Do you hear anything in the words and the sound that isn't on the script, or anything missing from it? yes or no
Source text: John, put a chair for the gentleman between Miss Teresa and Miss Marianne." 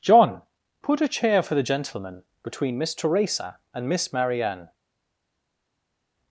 no